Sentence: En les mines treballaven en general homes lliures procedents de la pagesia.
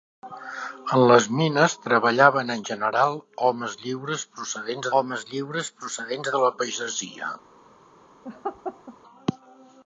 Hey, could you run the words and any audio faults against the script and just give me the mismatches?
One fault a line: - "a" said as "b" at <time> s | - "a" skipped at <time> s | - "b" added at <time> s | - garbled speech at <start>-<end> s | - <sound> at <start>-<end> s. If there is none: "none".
- "homes lliures procedents" added at 5.0 s
- laugh at 8.2-9.0 s